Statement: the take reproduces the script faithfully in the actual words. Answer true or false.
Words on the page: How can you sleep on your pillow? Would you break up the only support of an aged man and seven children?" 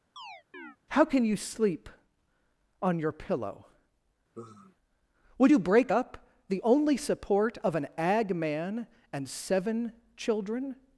false